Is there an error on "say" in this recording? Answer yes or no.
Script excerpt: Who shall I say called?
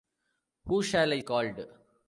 yes